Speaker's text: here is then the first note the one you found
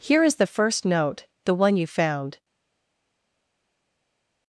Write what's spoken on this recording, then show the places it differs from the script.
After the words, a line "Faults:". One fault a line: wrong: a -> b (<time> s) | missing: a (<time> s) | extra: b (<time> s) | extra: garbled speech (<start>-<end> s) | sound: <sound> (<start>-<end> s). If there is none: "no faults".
here is the first note the one you found
Faults:
missing: then (0.4 s)